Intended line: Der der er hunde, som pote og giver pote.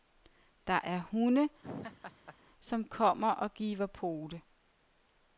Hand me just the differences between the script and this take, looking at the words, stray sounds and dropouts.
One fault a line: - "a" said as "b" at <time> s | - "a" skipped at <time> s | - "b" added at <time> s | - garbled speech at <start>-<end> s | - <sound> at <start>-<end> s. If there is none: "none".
- "der" skipped at 0.8 s
- laugh at 1.6-2.4 s
- "pote" said as "kommer" at 2.8 s